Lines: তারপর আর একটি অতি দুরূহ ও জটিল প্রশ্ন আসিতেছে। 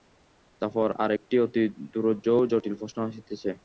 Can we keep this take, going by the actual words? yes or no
yes